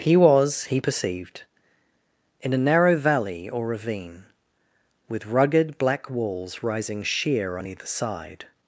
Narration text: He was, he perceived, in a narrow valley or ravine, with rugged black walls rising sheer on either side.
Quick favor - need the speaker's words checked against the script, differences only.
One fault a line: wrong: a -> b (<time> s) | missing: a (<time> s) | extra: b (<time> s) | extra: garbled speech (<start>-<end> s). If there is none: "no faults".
no faults